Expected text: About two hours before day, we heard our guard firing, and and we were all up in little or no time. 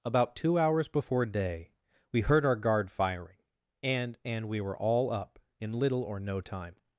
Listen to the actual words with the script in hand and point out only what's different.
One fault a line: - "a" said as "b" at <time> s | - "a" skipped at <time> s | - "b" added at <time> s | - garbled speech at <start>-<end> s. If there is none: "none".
none